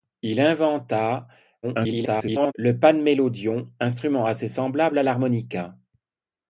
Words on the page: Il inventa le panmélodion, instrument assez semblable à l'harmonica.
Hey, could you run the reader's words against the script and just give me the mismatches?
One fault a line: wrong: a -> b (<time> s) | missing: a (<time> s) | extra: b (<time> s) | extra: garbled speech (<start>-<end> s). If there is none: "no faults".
extra: garbled speech (1.6-2.5 s)